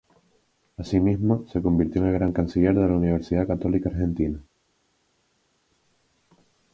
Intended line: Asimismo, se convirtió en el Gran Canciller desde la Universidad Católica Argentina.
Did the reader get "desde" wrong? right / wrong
wrong